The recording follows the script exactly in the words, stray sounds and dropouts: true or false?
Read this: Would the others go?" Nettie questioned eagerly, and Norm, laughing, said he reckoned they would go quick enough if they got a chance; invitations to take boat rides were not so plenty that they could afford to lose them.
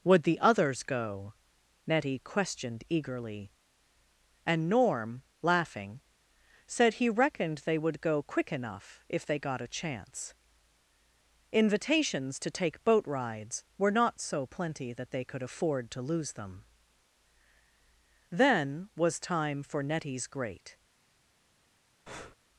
false